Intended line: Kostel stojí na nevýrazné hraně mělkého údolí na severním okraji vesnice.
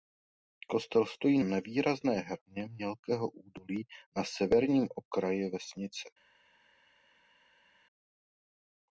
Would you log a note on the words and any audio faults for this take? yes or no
yes